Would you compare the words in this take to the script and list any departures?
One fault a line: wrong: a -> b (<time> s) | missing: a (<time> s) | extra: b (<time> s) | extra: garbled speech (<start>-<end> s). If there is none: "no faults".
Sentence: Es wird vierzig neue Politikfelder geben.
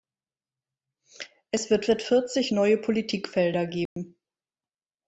extra: wird (1.9 s)